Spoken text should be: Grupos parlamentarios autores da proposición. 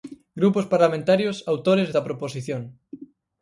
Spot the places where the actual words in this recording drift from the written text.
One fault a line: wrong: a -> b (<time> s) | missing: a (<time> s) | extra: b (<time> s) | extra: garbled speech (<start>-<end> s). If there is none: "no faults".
no faults